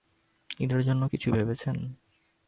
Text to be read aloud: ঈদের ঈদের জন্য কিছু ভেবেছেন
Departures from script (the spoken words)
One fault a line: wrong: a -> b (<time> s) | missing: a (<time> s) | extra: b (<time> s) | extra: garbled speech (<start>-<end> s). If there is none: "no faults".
missing: ঈদের (0.8 s)